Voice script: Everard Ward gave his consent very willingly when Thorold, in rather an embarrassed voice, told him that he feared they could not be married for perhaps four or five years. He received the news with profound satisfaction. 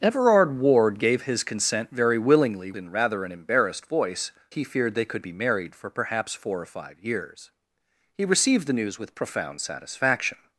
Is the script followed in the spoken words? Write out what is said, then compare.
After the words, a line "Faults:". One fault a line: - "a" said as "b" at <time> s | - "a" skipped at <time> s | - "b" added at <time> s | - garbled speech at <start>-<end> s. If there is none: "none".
Everard Ward gave his consent very willingly in rather an embarrassed voice, he feared they could be married for perhaps four or five years. He received the news with profound satisfaction.
Faults:
- "when Thorold" skipped at 2.7 s
- "told him that" skipped at 4.3 s
- "not" skipped at 5.2 s